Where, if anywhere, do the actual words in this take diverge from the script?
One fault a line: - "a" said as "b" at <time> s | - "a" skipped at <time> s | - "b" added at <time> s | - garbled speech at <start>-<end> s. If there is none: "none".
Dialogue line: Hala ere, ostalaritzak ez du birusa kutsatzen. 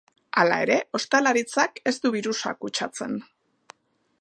none